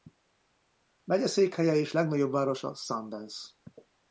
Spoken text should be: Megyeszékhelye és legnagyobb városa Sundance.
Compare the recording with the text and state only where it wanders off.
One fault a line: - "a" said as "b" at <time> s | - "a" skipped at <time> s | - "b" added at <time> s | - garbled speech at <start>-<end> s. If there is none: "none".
none